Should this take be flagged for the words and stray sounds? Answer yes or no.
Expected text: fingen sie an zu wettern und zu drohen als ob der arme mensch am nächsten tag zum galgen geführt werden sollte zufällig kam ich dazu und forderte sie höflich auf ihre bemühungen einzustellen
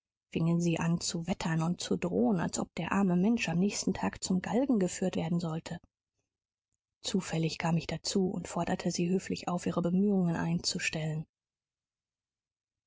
no